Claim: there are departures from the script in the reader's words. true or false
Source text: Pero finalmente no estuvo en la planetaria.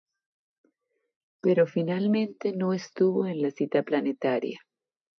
true